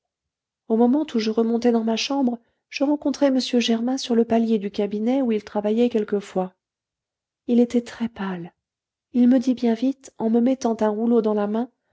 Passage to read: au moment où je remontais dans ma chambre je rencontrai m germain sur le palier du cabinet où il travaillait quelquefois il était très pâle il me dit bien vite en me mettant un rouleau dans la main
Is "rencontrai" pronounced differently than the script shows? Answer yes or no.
no